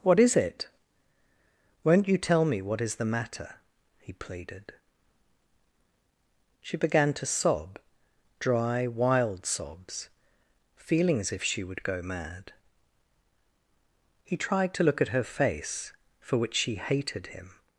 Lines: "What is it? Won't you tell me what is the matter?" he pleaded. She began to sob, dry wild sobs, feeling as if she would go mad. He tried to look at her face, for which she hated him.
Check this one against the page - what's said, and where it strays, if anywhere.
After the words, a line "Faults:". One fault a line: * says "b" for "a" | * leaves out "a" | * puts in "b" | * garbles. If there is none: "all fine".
"What is it? Won't you tell me what is the matter?" he pleaded. She began to sob, dry wild sobs, feeling as if she would go mad. He tried to look at her face, for which she hated him.
Faults:
all fine